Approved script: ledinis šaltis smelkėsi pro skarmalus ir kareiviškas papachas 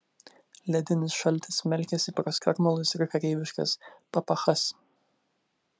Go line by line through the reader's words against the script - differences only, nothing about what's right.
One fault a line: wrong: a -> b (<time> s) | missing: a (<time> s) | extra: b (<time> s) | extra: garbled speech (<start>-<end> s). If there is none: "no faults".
no faults